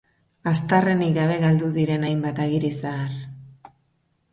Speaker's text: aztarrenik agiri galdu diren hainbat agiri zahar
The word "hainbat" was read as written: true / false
true